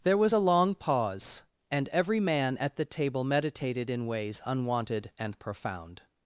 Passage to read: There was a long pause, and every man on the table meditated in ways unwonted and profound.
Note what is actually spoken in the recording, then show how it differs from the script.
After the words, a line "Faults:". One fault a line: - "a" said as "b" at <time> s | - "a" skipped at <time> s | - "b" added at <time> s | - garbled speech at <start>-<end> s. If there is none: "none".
There was a long pause, and every man at the table meditated in ways unwonted and profound.
Faults:
- "on" said as "at" at 2.6 s